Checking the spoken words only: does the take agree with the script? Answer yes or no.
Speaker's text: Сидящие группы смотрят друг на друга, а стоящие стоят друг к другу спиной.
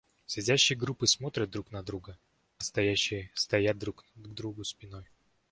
yes